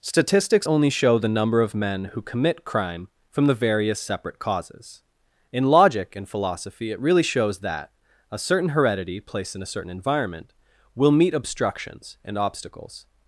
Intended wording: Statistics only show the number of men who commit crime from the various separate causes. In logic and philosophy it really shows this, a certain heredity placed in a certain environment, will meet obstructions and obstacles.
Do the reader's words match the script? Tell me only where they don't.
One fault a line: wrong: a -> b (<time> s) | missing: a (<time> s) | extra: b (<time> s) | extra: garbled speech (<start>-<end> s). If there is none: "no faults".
wrong: this -> that (7.6 s)